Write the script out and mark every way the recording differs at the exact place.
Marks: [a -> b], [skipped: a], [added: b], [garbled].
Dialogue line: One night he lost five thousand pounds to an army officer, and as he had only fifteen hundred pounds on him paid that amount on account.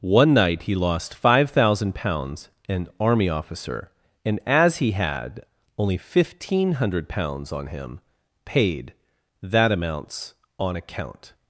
One night he lost five thousand pounds [skipped: to] an army officer, and as he had only fifteen hundred pounds on him paid that [amount -> amounts] on account.